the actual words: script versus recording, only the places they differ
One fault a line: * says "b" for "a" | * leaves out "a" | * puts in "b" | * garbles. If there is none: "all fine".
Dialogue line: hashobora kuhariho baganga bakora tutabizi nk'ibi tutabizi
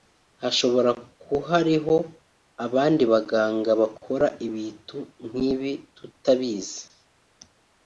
* puts in "abandi"
* says "ibitu" for "tutabizi"